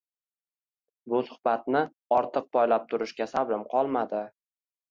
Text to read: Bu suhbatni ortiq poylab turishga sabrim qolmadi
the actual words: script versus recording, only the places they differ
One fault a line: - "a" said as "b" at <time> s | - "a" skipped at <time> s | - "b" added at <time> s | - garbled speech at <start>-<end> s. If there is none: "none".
none